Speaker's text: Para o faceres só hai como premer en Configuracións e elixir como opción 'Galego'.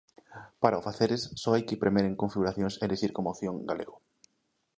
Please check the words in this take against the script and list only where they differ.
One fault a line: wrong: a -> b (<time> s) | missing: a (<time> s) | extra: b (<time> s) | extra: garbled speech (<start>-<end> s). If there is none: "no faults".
wrong: como -> que (1.7 s)